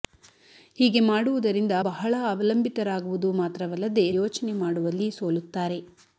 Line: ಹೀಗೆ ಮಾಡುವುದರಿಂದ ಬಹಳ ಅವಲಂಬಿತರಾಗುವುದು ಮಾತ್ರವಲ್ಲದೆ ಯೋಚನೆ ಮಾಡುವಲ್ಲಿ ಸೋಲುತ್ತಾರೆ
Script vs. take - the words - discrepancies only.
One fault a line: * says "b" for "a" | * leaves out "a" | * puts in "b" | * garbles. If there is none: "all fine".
all fine